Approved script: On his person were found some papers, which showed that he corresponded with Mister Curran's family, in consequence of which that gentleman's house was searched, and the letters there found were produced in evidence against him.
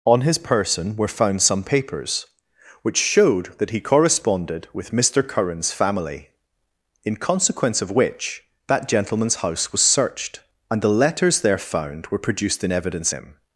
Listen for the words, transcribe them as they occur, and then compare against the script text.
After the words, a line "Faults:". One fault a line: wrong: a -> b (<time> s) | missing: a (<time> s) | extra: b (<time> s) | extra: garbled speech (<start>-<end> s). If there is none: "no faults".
On his person were found some papers, which showed that he corresponded with Mister Curran's family, in consequence of which that gentleman's house was searched, and the letters there found were produced in evidence him.
Faults:
missing: against (13.1 s)